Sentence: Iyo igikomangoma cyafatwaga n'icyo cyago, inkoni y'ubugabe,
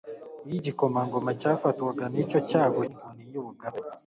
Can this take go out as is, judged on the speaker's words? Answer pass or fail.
pass